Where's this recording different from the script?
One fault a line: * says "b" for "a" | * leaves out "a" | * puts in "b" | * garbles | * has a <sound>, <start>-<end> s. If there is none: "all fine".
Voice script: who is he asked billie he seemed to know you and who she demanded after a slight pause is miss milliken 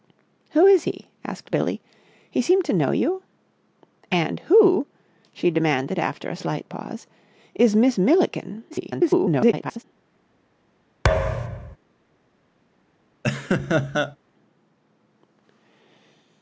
* garbles
* has a thud, 11.0-11.8 s
* has a laugh, 13.2-14.2 s